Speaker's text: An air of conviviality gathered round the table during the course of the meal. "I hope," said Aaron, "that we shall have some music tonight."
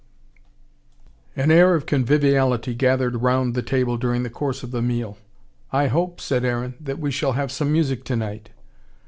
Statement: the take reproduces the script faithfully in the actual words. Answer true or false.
true